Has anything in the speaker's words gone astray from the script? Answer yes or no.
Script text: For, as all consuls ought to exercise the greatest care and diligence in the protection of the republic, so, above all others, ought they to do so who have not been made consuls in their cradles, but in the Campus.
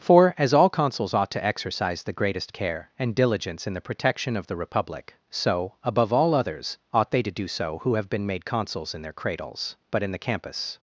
yes